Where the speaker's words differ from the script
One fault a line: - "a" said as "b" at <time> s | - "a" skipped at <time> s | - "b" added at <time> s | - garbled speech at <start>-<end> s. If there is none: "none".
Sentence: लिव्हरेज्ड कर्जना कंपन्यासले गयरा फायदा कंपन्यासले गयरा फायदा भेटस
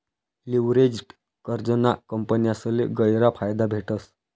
- "कंपन्यासले गयरा फायदा" skipped at 3.7 s